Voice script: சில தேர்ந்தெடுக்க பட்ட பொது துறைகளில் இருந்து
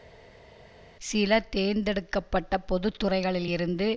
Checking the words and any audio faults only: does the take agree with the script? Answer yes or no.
yes